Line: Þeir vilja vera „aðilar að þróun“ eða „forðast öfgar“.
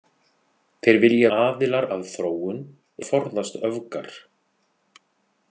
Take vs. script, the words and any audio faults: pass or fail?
fail